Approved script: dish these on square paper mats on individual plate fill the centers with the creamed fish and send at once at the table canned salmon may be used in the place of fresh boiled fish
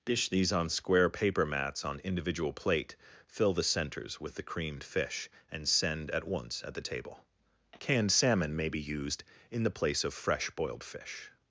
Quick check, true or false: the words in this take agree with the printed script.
true